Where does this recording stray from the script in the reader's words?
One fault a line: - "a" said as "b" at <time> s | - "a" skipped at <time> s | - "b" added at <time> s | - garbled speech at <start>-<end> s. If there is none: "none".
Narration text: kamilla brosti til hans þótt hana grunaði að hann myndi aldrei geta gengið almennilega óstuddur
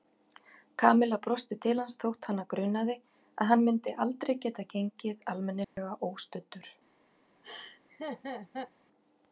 none